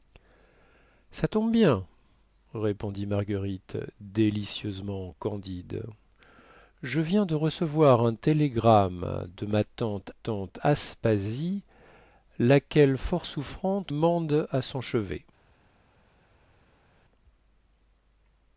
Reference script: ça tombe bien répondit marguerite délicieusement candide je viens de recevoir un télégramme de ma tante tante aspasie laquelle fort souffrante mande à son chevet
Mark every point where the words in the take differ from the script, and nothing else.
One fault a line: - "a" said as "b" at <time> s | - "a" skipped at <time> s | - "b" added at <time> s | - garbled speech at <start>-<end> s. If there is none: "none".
none